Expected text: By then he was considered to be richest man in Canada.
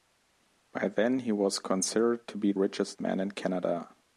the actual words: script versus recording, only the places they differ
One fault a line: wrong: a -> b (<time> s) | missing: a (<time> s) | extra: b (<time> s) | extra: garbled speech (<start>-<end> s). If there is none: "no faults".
no faults